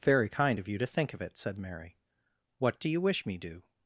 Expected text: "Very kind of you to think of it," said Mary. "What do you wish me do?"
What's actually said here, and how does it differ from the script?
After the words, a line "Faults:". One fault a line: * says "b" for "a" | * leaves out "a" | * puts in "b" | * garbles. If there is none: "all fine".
"Very kind of you to think of it," said Mary. "What do you wish me do?"
Faults:
all fine